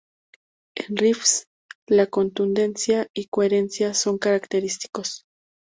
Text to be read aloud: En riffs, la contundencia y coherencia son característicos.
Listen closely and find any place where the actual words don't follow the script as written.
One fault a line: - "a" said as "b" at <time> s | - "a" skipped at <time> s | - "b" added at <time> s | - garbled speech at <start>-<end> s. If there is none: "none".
none